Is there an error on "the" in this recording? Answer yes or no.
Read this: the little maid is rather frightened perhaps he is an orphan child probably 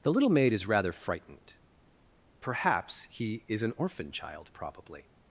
no